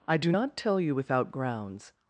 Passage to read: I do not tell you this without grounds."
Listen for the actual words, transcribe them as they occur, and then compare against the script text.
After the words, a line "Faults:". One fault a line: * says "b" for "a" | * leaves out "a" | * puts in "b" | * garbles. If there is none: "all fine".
I do not tell you without grounds."
Faults:
* leaves out "this"